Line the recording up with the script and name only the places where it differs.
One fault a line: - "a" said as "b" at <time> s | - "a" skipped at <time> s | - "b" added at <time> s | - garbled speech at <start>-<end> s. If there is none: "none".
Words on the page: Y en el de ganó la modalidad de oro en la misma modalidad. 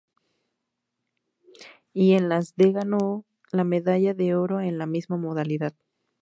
- "el" said as "las" at 2.3 s
- "modalidad" said as "medalla" at 3.6 s